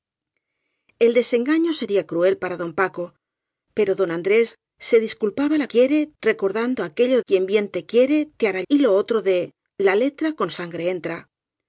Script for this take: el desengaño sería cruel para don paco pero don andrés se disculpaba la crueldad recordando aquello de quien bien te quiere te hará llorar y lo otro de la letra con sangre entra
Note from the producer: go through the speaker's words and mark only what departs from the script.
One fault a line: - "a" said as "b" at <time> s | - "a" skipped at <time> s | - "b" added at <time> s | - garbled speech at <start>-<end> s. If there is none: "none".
- "crueldad" said as "quiere" at 5.7 s
- "de" skipped at 7.2 s
- "llorar" skipped at 8.6 s